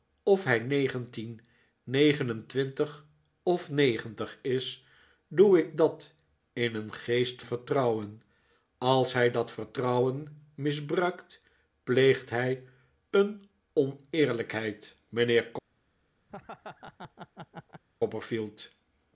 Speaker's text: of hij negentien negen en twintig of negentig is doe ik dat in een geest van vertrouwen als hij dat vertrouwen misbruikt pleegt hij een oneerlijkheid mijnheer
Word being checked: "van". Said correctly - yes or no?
no